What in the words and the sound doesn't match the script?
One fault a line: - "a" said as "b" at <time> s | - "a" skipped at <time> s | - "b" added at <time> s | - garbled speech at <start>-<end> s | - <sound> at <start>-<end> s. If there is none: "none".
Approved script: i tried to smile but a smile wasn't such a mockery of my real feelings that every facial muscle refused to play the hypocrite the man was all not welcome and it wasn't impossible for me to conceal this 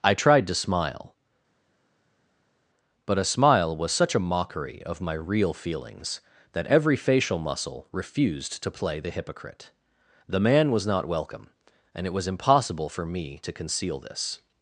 - "wasn't" said as "was" at 3.8 s
- "all" skipped at 10.9 s
- "wasn't" said as "was" at 12.1 s